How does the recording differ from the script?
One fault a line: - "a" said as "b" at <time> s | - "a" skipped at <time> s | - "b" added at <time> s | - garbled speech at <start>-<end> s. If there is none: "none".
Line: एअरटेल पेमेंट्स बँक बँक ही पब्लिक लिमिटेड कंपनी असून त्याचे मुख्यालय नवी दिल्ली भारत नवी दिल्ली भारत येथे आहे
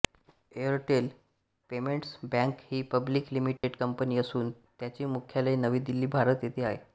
- "बँक" skipped at 2.6 s
- "नवी दिल्ली भारत" skipped at 6.4 s